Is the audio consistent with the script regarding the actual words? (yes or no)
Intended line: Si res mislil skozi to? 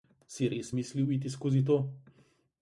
no